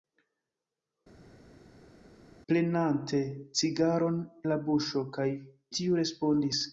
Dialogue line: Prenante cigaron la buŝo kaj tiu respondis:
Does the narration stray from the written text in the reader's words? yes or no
no